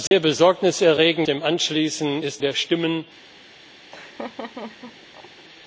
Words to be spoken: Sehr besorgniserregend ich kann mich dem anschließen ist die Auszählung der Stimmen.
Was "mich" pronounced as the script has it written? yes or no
no